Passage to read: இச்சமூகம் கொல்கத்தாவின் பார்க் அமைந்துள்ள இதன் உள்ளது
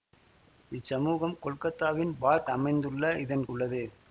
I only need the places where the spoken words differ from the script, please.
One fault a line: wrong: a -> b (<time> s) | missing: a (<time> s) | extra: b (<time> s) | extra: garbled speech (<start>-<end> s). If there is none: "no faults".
no faults